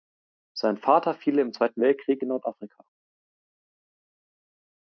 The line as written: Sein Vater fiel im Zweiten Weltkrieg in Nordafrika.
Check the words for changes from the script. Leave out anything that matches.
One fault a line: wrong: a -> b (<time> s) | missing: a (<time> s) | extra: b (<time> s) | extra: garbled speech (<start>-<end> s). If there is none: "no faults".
no faults